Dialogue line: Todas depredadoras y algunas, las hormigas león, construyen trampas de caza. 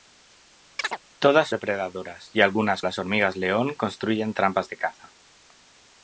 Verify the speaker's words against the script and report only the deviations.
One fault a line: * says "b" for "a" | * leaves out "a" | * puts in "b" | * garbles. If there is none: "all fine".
all fine